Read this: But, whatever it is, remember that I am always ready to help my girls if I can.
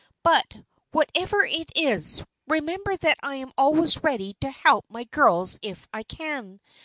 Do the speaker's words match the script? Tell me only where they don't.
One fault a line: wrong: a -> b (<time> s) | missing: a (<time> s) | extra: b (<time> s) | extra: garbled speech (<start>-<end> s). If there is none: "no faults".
no faults